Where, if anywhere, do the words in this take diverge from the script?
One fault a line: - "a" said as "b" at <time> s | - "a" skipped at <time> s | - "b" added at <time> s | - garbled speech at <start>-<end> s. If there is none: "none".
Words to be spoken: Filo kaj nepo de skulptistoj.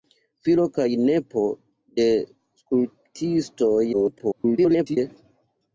- garbled speech at 3.9-5.0 s